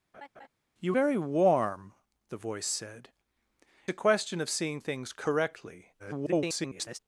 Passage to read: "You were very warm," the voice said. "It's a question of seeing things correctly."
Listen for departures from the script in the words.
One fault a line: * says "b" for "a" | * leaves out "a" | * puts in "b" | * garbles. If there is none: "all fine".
* leaves out "were"
* leaves out "It's"
* garbles